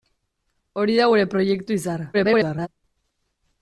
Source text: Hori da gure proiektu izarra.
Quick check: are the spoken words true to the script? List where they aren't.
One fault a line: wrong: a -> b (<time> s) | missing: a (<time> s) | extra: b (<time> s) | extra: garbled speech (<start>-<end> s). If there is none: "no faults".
extra: garbled speech (2.1-2.7 s)